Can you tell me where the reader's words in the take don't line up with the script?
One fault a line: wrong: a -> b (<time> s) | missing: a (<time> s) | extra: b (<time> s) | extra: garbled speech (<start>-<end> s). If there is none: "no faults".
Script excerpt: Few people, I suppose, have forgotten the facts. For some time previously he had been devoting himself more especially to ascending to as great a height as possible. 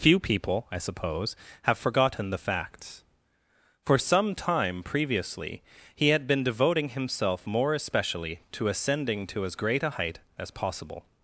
no faults